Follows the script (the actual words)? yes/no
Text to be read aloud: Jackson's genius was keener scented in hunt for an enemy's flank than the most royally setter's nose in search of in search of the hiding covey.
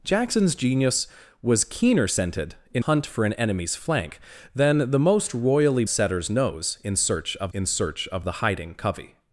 yes